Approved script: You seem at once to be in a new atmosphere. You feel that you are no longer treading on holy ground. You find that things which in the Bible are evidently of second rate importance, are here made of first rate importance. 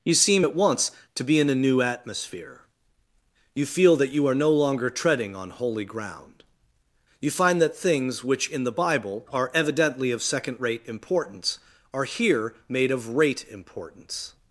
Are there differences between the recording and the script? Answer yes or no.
yes